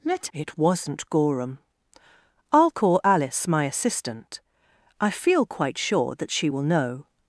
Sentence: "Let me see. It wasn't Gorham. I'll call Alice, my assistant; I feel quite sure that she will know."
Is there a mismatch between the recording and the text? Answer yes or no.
yes